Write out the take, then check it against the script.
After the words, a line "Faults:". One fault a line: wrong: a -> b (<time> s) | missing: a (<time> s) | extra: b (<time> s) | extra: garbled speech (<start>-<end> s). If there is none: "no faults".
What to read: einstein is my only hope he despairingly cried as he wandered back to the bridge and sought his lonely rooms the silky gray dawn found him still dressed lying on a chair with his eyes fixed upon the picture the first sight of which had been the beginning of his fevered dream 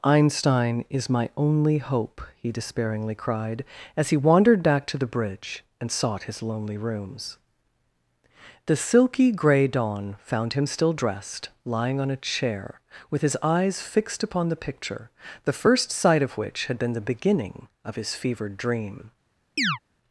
einstein is my only hope he despairingly cried as he wandered back to the bridge and sought his lonely rooms the silky gray dawn found him still dressed lying on a chair with his eyes fixed upon the picture the first sight of which had been the beginning of his fevered dream
Faults:
no faults